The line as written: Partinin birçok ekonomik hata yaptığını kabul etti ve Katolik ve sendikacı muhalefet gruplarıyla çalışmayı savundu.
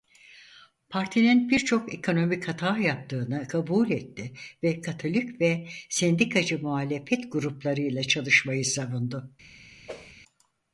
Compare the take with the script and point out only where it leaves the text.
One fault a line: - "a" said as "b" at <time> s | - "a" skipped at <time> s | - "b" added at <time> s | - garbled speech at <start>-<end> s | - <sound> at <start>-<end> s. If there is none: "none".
- whoosh at 9.9-10.1 s